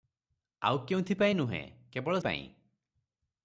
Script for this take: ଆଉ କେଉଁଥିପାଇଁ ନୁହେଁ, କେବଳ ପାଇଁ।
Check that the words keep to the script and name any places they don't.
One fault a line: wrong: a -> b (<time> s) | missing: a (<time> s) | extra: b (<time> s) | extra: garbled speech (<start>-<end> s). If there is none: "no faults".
no faults